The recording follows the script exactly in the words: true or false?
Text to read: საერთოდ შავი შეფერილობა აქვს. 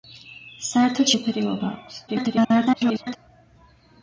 false